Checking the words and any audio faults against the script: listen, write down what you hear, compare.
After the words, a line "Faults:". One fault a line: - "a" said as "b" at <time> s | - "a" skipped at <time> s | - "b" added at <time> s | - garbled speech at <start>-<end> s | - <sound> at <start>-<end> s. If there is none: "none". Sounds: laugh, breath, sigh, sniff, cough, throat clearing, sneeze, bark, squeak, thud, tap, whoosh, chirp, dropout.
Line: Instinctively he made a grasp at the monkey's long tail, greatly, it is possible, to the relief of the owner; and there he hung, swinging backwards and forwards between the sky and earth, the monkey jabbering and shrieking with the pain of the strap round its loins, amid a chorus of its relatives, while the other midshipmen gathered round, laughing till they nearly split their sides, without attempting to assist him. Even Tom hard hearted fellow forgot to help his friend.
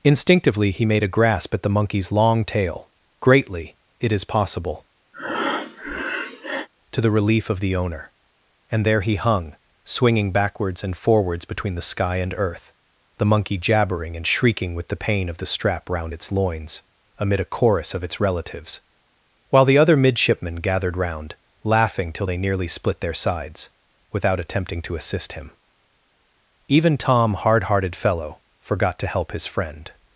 Instinctively he made a grasp at the monkey's long tail, greatly, it is possible, to the relief of the owner; and there he hung, swinging backwards and forwards between the sky and earth, the monkey jabbering and shrieking with the pain of the strap round its loins, amid a chorus of its relatives, while the other midshipmen gathered round, laughing till they nearly split their sides, without attempting to assist him. Even Tom hard hearted fellow forgot to help his friend.
Faults:
- breath at 5.1-6.7 s